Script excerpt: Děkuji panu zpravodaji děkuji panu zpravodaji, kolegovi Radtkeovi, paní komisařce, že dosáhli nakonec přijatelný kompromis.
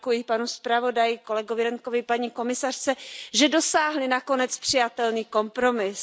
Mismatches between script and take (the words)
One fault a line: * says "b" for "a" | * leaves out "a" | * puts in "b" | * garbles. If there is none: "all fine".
* leaves out "děkuji panu zpravodaji"